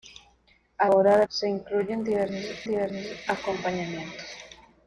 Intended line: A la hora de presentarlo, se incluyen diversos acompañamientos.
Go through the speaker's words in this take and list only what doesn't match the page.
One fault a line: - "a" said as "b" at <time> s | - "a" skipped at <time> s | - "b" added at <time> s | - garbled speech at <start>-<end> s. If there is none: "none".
- "la" skipped at 0.9 s
- "presentarlo" skipped at 1.3 s
- "diversos" added at 2.6 s